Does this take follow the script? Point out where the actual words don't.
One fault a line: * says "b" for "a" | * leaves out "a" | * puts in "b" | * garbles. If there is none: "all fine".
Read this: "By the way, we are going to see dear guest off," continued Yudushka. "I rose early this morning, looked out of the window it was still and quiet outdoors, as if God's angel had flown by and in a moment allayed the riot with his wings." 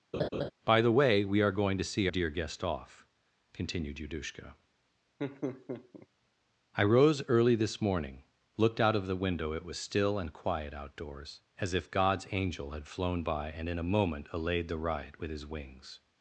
all fine